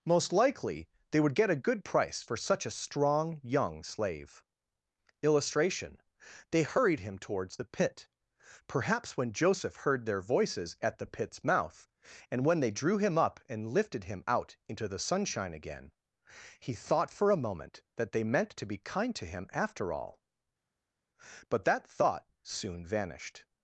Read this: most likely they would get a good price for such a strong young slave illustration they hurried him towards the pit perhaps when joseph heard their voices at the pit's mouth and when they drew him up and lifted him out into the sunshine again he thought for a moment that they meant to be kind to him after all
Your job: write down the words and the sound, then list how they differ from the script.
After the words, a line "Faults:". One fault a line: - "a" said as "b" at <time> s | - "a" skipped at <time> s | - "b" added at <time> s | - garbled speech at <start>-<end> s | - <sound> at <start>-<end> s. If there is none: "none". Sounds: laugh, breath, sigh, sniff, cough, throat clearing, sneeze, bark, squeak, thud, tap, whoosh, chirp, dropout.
most likely they would get a good price for such a strong young slave illustration they hurried him towards the pit perhaps when joseph heard their voices at the pit's mouth and when they drew him up and lifted him out into the sunshine again he thought for a moment that they meant to be kind to him after all but that thought soon vanished
Faults:
- "but that thought soon vanished" added at 21.5 s